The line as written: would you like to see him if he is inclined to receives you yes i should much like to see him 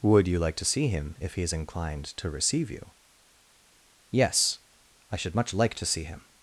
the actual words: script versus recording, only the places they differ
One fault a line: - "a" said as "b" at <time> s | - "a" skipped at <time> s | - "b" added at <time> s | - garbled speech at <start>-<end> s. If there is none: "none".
- "receives" said as "receive" at 2.3 s